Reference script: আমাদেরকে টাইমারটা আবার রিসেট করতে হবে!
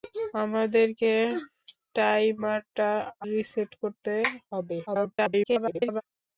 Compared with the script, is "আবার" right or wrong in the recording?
wrong